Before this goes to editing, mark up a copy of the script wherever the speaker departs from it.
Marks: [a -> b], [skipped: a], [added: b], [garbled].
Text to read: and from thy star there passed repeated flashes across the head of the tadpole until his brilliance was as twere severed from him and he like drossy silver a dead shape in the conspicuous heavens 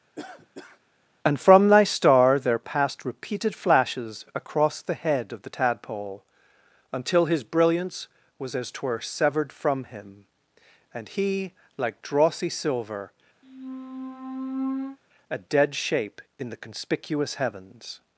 and from thy star there passed repeated flashes across the head of the tadpole until his brilliance was as twere severed from him and he like drossy silver a dead shape in the conspicuous heavens